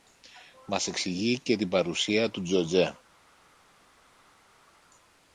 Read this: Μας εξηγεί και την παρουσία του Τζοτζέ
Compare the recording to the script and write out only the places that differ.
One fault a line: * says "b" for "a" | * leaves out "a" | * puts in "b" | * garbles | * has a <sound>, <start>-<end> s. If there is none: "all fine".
all fine